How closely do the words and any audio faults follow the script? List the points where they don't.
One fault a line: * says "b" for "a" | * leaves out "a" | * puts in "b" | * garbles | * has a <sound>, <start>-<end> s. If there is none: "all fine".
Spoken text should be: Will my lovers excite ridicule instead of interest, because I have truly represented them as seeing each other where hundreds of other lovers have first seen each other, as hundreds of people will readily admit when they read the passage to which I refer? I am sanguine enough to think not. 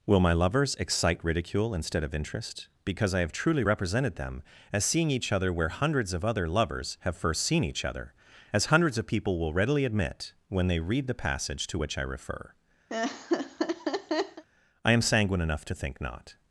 * has a laugh, 12.9-14.4 s